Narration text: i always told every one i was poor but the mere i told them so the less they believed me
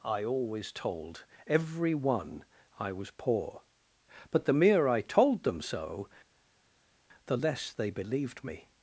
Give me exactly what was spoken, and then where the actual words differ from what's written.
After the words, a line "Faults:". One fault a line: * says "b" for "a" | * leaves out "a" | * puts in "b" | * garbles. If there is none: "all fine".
i always told every one i was poor but the mere i told them so the less they believed me
Faults:
all fine